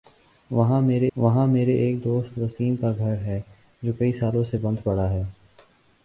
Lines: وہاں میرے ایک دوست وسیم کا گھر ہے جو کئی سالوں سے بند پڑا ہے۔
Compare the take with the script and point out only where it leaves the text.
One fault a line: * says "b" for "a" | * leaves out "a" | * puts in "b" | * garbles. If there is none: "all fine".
* puts in "وہاں میرے"